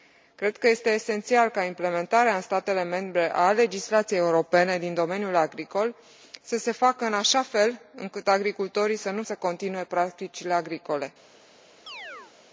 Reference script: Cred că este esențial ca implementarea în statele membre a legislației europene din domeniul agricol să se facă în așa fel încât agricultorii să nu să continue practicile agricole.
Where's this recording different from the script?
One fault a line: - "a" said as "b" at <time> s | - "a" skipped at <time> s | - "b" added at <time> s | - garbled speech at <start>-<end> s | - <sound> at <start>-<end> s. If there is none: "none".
- chirp at 11.9-12.3 s